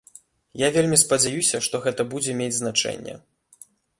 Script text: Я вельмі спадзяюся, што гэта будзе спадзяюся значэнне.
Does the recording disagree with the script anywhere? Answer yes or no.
yes